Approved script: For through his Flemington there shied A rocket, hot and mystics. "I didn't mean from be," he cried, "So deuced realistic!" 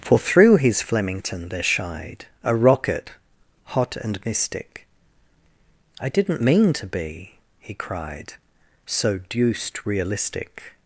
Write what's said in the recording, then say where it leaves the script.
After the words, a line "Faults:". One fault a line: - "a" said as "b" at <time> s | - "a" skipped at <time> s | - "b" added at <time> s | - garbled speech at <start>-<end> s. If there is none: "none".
For through his Flemington there shied A rocket, hot and mystic. "I didn't mean to be," he cried, "So deuced realistic!"
Faults:
- "mystics" said as "mystic" at 4.2 s
- "from" said as "to" at 6.7 s